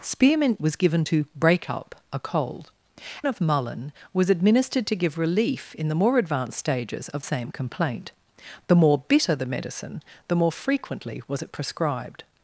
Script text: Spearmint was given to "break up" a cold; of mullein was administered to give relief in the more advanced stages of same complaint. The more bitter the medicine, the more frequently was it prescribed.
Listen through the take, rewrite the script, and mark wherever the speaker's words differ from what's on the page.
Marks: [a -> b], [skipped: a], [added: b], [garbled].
Spearmint was given to "break up" a cold; of mullein was administered to give relief in the more advanced stages of same complaint. The more bitter the medicine, the more frequently was it prescribed.